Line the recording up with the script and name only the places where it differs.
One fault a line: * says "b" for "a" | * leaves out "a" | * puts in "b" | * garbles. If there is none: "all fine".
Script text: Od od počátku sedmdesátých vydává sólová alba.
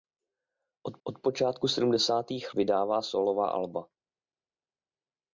all fine